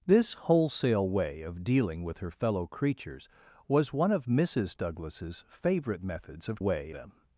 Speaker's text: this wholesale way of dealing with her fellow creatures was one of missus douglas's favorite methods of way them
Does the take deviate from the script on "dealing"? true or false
false